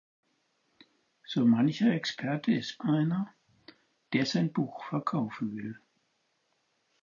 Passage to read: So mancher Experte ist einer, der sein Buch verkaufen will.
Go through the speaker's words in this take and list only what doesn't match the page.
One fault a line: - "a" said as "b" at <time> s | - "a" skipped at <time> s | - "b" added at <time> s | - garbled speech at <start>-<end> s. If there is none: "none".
none